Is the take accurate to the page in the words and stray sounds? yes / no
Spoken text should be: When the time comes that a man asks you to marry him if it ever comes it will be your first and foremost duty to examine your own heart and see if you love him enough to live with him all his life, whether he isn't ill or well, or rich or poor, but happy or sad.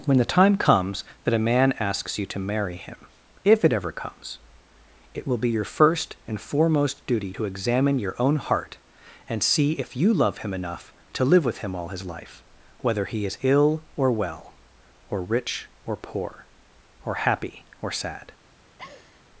no